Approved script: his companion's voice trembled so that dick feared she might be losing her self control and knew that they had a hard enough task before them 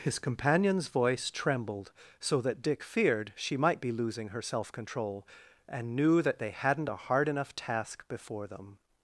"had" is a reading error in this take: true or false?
true